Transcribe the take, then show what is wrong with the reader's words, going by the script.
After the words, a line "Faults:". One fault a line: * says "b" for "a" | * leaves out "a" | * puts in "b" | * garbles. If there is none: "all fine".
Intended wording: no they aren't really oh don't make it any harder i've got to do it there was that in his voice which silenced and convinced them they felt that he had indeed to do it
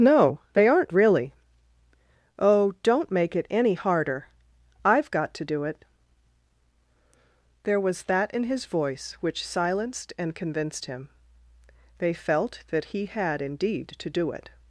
no they aren't really oh don't make it any harder i've got to do it there was that in his voice which silenced and convinced him they felt that he had indeed to do it
Faults:
* says "him" for "them"